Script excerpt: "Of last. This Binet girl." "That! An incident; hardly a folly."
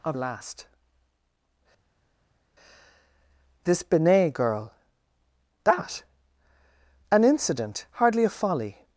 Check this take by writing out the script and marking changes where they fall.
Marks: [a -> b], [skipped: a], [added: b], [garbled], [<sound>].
"Of last. This Binet girl." "That! An incident; hardly a folly."